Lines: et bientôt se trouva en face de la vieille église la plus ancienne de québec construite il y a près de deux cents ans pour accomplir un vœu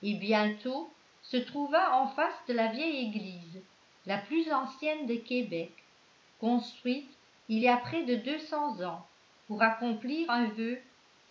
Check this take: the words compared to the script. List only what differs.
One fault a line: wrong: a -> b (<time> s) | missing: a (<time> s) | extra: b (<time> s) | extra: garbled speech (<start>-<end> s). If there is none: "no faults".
no faults